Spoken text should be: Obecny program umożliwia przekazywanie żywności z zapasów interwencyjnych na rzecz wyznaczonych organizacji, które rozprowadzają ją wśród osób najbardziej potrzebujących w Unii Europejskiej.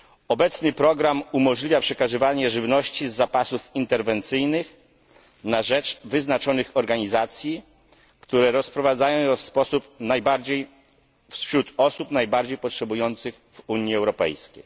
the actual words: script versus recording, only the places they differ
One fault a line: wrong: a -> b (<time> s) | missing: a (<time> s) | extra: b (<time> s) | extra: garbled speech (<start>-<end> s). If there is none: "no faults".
no faults